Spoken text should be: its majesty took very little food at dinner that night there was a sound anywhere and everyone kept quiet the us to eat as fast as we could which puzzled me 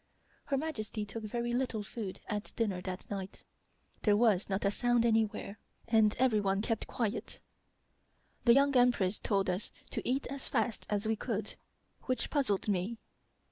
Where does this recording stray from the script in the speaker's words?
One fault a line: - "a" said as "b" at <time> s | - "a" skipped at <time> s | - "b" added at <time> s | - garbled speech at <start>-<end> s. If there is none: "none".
- "its" said as "her" at 0.5 s
- "not" added at 4.5 s
- "young empress told" added at 8.5 s